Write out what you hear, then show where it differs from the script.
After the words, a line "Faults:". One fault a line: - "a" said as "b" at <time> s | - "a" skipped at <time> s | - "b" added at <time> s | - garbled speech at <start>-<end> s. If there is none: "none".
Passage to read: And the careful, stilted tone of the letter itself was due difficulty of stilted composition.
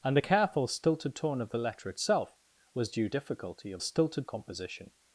And the careful, stilted tone of the letter itself was due difficulty of stilted composition.
Faults:
none